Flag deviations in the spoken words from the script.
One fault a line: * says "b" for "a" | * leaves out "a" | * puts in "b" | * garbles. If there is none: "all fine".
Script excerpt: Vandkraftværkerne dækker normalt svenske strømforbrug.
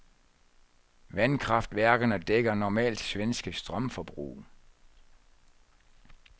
all fine